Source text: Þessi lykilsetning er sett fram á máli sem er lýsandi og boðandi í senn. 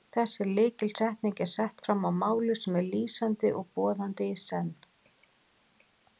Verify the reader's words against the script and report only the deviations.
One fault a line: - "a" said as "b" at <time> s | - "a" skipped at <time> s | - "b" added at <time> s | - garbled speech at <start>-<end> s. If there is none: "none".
none